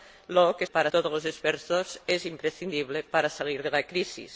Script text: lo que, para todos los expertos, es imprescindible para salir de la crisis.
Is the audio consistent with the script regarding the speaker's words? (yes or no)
yes